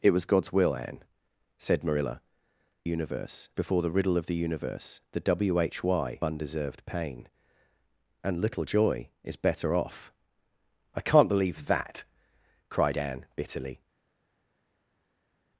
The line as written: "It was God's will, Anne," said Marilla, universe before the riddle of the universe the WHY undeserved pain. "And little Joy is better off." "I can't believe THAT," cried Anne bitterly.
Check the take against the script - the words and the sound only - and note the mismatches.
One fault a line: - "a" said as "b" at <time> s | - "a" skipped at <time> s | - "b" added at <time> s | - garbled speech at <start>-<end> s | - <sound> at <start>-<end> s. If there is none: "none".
none